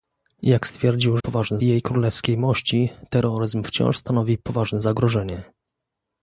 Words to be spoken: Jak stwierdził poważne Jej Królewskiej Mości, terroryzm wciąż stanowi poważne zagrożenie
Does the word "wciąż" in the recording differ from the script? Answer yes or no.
no